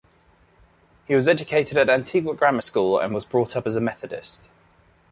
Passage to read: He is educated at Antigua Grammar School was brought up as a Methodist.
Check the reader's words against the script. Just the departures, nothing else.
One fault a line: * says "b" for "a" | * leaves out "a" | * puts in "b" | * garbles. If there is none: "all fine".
* says "was" for "is"
* puts in "and"